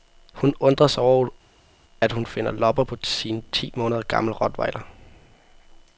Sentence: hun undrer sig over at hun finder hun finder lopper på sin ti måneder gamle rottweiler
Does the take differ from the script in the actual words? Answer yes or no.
yes